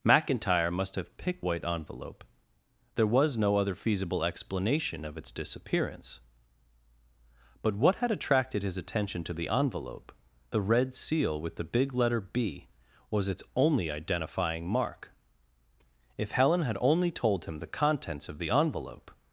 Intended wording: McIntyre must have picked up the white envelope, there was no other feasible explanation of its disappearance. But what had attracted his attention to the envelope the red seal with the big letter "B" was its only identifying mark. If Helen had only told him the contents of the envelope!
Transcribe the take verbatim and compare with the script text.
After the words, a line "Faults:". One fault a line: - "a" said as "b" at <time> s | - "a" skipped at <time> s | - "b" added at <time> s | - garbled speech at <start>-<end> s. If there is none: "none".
McIntyre must have picked white envelope, there was no other feasible explanation of its disappearance. But what had attracted his attention to the envelope the red seal with the big letter "B" was its only identifying mark. If Helen had only told him the contents of the envelope!
Faults:
- "up the" skipped at 1.4 s